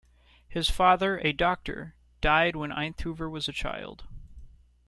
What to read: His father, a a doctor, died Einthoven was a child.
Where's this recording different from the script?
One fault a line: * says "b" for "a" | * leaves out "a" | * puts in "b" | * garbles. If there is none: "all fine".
* leaves out "a"
* puts in "when"